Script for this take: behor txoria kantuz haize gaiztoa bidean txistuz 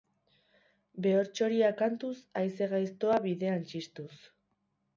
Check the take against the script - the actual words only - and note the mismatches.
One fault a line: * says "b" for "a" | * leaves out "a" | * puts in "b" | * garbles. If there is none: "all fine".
all fine